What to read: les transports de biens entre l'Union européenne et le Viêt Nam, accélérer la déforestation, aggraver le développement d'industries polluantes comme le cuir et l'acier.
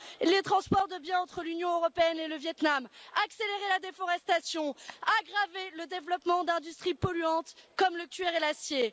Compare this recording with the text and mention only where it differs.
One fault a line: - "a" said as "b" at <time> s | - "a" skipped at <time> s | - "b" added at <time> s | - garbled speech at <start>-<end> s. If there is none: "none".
none